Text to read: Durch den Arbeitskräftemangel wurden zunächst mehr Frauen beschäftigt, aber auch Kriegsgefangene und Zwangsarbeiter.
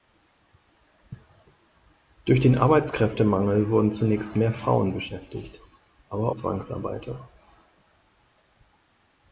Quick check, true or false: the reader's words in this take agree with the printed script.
false